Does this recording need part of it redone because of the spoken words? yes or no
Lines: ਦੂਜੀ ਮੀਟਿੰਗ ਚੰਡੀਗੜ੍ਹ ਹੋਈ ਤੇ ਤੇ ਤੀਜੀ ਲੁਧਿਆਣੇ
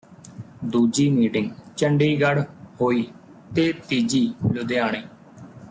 yes